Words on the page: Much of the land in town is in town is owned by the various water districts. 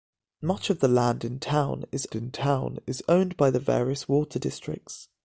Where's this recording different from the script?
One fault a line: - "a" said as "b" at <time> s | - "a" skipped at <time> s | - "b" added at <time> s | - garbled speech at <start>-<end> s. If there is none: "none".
none